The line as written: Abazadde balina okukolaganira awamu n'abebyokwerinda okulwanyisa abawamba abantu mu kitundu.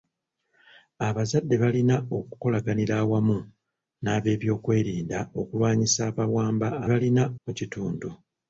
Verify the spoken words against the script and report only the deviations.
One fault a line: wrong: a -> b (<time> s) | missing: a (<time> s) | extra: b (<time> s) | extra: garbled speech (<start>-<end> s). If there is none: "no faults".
wrong: abantu -> balina (6.9 s)